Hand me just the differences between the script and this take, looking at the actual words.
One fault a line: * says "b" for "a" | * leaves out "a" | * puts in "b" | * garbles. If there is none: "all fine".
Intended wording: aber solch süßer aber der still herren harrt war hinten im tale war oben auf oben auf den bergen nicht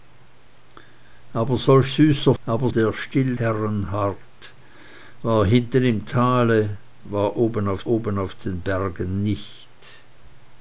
all fine